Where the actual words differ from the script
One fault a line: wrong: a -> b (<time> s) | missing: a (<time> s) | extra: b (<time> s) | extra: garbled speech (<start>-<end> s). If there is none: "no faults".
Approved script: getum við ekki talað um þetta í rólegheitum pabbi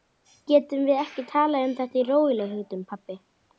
no faults